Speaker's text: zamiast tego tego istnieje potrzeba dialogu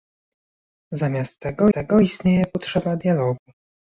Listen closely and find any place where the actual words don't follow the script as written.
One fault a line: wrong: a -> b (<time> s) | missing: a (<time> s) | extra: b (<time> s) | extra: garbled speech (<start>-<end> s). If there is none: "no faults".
no faults